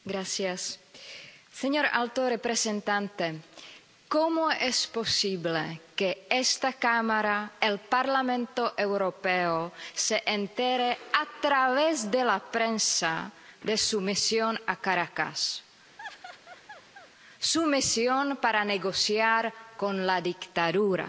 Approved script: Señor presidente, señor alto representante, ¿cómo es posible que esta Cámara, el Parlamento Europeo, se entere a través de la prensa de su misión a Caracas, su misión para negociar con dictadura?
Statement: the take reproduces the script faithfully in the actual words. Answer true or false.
false